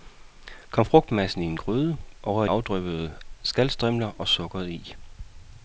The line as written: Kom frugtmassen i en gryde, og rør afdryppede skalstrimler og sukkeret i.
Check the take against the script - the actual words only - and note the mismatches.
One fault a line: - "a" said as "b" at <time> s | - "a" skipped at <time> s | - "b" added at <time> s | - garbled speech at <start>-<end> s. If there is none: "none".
none